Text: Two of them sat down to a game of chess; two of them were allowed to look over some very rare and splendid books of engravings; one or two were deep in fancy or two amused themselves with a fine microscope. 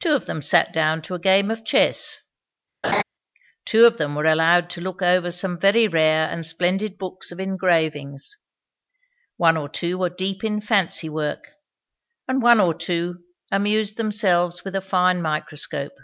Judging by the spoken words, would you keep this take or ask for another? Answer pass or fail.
fail